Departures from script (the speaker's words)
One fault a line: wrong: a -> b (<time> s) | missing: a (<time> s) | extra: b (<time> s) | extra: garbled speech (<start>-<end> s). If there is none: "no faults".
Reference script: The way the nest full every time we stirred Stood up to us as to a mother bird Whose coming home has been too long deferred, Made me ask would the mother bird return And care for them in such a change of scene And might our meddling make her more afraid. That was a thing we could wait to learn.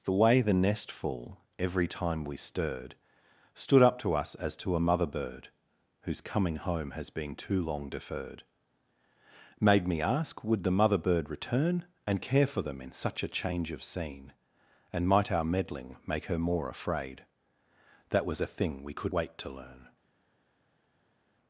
no faults